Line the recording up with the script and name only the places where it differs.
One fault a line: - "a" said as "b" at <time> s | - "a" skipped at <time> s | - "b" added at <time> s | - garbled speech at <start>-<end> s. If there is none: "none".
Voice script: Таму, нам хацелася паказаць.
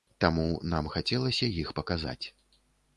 - "іх" added at 1.6 s